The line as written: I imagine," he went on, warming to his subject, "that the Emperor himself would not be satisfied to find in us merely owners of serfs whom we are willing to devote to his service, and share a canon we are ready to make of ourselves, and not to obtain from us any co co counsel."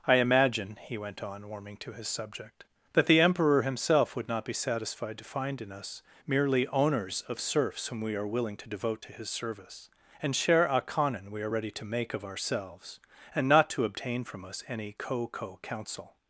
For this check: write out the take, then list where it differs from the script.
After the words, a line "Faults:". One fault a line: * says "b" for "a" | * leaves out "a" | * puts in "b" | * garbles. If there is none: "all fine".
I imagine," he went on, warming to his subject, "that the Emperor himself would not be satisfied to find in us merely owners of serfs whom we are willing to devote to his service, and share a canon we are ready to make of ourselves, and not to obtain from us any co co counsel."
Faults:
all fine